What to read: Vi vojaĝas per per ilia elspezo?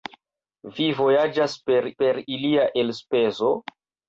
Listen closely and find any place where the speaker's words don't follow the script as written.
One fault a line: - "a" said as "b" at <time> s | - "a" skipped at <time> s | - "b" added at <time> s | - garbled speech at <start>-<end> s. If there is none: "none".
none